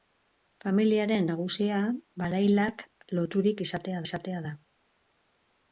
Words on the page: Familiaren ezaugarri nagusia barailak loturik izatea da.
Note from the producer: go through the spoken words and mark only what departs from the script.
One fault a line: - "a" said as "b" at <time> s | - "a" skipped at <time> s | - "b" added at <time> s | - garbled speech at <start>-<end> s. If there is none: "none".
- "ezaugarri" skipped at 1.3 s
- "izatea" added at 4.1 s